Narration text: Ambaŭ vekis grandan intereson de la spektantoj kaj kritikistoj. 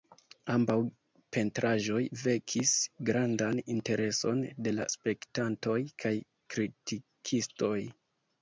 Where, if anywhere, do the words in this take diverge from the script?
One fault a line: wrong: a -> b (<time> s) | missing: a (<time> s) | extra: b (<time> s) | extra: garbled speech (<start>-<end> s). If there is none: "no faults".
extra: pentraĵoj (1.4 s)